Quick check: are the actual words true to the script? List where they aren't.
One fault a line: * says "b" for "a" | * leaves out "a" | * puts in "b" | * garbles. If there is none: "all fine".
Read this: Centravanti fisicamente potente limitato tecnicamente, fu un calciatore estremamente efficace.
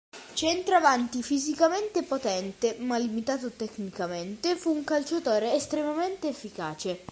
* puts in "ma"